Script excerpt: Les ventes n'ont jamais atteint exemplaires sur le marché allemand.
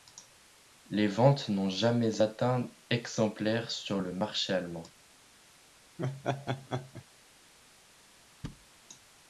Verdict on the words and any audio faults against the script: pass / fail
fail